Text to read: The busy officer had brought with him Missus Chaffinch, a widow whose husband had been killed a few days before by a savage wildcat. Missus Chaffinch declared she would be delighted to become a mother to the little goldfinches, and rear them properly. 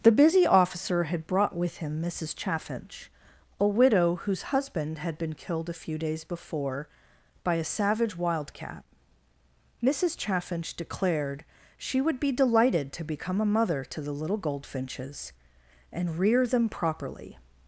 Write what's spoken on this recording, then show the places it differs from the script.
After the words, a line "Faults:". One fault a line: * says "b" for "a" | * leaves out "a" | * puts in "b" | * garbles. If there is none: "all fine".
The busy officer had brought with him Missus Chaffinch, a widow whose husband had been killed a few days before by a savage wildcat. Missus Chaffinch declared she would be delighted to become a mother to the little goldfinches, and rear them properly.
Faults:
all fine